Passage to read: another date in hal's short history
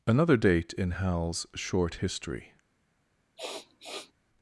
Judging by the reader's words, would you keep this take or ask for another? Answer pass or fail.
pass